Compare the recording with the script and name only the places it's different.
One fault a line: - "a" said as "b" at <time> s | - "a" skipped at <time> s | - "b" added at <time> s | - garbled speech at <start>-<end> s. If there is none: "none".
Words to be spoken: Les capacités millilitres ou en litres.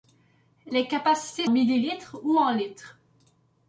none